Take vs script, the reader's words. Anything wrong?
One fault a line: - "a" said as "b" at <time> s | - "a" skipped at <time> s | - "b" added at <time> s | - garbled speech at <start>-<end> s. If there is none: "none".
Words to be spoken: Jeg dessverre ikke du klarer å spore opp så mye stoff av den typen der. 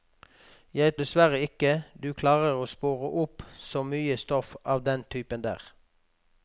none